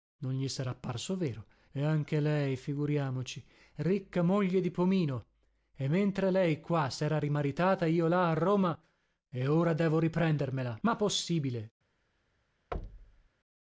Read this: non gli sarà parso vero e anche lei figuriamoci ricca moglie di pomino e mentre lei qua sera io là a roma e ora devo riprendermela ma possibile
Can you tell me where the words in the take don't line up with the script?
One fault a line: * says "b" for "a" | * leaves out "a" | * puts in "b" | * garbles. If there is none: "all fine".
* puts in "rimaritata"